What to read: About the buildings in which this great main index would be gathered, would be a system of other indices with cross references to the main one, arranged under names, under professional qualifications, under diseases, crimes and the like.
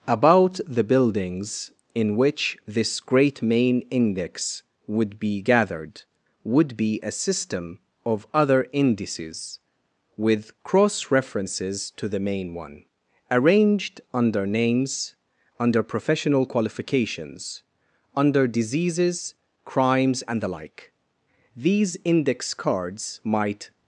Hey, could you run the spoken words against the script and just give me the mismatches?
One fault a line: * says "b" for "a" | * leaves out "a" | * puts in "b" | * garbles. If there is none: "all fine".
* puts in "These index cards might"